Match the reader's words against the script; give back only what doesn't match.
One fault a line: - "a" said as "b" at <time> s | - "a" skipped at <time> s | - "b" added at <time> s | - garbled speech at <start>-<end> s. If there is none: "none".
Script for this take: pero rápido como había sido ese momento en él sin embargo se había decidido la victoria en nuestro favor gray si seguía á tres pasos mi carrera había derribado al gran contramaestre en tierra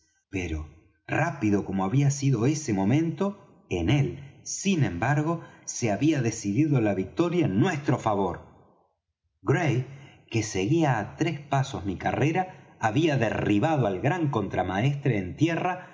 - "si" said as "que" at 10.3 s